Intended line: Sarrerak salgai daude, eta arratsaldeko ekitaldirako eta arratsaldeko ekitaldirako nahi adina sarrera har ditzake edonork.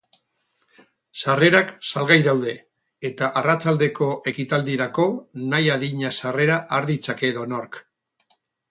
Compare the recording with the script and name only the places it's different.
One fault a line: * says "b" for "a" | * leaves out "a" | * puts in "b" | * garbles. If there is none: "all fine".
* leaves out "eta arratsaldeko ekitaldirako"